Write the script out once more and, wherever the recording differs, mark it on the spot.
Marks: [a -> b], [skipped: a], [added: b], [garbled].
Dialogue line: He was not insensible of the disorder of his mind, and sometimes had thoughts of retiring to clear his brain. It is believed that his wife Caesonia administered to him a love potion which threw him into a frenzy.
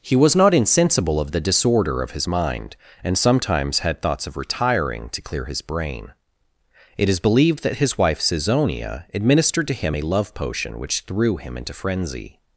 He was not insensible of the disorder of his mind, and sometimes had thoughts of retiring to clear his brain. It is believed that his wife Caesonia administered to him a love potion which threw him into [skipped: a] frenzy.